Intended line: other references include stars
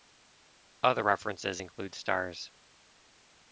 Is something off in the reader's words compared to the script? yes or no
no